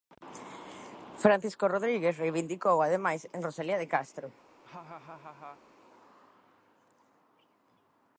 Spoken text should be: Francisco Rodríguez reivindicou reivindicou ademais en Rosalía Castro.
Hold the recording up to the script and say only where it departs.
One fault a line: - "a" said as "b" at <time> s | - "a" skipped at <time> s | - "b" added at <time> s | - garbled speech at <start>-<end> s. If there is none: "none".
- "reivindicou" skipped at 2.8 s
- "de" added at 3.8 s